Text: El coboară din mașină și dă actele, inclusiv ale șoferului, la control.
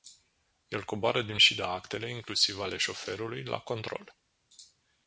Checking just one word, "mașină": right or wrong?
wrong